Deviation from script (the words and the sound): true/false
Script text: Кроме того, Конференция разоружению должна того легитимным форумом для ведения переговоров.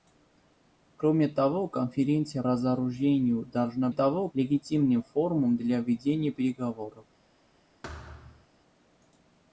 true